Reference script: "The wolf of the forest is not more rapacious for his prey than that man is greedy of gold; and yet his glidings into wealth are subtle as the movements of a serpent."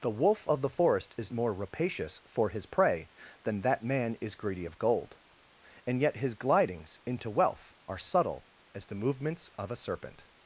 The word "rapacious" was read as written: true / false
true